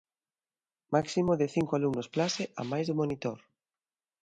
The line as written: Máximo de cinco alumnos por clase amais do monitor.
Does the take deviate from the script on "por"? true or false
true